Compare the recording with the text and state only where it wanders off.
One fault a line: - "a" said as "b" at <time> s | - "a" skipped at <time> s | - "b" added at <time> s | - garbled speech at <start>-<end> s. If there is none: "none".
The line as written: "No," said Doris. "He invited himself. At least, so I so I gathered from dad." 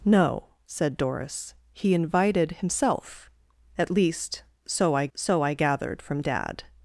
none